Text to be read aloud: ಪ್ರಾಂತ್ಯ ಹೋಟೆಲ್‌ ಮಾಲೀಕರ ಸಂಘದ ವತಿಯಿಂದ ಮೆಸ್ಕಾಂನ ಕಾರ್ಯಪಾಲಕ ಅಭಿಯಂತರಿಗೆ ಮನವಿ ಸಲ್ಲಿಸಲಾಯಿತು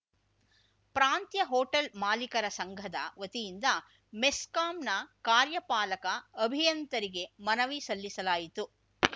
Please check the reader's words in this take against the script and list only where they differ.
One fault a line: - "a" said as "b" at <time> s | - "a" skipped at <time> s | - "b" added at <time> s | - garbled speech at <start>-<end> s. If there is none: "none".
none